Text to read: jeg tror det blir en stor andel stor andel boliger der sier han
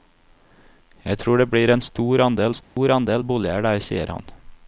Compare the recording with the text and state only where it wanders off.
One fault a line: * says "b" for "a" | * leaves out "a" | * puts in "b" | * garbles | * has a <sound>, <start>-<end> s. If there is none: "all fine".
* has a dropout, 2.6-2.8 s